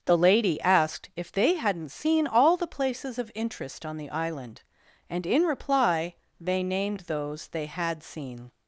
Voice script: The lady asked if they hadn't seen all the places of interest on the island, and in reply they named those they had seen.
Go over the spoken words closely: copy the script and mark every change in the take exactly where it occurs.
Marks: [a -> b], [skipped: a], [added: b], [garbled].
The lady asked if they hadn't seen all the places of interest on the island, and in reply they named those they had seen.